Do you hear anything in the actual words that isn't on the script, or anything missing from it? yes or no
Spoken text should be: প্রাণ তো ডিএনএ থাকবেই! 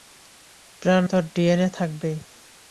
no